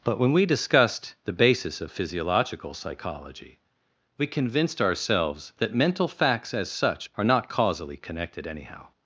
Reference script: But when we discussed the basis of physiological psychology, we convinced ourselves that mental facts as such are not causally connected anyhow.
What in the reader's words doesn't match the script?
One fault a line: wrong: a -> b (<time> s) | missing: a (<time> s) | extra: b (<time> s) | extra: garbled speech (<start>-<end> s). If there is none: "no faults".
no faults